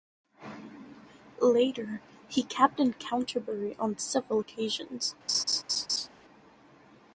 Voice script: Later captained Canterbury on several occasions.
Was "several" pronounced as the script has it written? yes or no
yes